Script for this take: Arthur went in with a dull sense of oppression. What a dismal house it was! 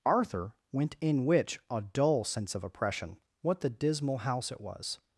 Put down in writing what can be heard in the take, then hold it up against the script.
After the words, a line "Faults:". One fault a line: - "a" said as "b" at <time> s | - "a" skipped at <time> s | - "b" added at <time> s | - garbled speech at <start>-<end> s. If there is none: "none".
Arthur went in which a dull sense of oppression. What the dismal house it was!
Faults:
- "with" said as "which" at 1.2 s
- "a" said as "the" at 3.6 s